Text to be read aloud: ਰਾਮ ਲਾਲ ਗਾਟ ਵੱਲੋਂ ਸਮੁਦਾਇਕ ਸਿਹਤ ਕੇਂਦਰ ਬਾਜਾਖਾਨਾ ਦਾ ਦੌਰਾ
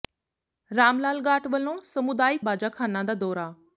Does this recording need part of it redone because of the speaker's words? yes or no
yes